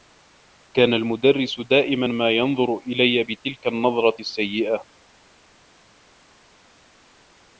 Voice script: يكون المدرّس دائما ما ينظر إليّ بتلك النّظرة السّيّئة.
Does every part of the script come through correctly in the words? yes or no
no